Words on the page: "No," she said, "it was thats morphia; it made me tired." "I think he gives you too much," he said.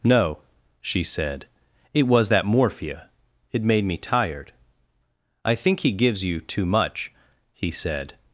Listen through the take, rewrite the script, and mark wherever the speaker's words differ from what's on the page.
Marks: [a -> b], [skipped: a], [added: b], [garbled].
"No," she said, "it was [thats -> that] morphia; it made me tired." "I think he gives you too much," he said.